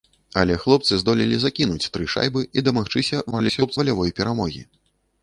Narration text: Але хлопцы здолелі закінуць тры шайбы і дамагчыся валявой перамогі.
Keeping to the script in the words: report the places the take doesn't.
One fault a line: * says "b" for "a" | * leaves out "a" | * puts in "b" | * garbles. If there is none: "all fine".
* garbles